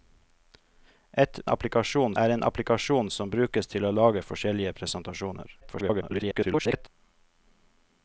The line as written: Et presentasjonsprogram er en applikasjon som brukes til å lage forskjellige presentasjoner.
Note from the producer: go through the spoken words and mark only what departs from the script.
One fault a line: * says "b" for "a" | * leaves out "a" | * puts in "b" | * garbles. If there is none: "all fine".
* says "applikasjon" for "presentasjonsprogram"
* garbles